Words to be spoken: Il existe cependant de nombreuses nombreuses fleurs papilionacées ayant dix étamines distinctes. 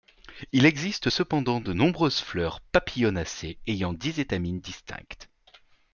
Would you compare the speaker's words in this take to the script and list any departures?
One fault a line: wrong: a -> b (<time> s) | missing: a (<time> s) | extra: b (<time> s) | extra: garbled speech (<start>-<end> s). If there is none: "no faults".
missing: nombreuses (2.2 s)